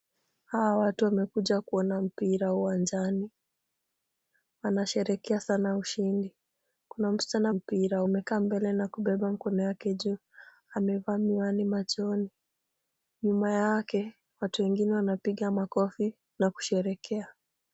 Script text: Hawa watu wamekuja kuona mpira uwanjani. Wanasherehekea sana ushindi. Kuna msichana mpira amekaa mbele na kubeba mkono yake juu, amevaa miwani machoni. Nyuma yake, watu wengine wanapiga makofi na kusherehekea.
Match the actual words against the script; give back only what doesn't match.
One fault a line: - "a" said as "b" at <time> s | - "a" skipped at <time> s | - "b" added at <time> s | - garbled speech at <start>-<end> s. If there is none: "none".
none